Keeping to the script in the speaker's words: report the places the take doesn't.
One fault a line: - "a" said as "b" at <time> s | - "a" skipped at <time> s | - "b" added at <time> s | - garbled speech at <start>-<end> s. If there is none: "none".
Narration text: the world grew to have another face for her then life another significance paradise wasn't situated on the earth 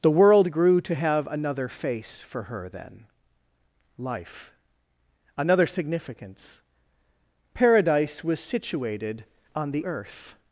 - "wasn't" said as "was" at 8.2 s